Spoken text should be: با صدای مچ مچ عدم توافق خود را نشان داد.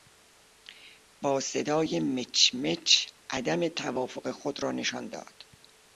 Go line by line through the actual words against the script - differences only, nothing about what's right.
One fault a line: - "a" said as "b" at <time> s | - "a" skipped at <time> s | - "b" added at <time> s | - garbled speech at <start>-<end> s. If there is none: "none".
none